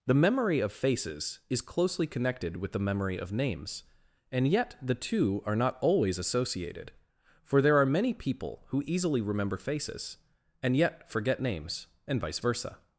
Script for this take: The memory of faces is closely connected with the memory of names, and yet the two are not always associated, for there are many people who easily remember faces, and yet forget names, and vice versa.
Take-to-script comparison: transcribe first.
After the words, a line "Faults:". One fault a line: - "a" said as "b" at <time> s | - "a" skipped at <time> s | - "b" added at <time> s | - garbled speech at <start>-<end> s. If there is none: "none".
The memory of faces is closely connected with the memory of names, and yet the two are not always associated, for there are many people who easily remember faces, and yet forget names, and vice versa.
Faults:
none